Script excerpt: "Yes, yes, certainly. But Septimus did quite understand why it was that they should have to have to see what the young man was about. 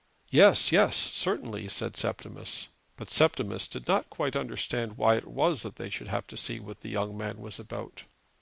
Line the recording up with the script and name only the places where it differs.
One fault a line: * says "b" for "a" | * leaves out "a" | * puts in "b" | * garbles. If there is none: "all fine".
* puts in "said Septimus"
* puts in "not"
* leaves out "have to"